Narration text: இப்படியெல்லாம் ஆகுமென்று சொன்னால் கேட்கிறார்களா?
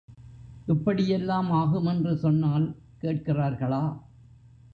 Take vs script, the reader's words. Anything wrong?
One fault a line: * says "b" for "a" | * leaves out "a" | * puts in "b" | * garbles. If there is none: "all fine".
all fine